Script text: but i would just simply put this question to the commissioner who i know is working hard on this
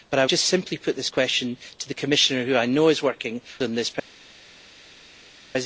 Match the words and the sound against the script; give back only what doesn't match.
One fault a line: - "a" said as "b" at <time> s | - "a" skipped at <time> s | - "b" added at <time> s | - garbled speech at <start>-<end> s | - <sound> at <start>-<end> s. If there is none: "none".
- "would" skipped at 0.2 s
- "hard" skipped at 3.4 s